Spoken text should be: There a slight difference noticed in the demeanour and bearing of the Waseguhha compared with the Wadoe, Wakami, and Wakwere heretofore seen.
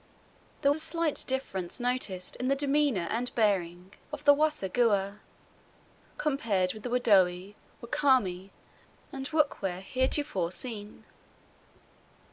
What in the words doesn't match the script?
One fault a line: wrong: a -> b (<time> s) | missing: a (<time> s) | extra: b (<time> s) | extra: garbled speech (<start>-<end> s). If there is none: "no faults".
no faults